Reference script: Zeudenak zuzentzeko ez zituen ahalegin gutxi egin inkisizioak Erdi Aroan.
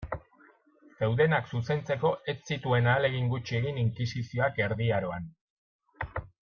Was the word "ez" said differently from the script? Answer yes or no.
no